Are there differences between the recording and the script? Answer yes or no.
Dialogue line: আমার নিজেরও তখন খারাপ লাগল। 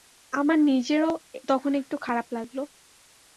yes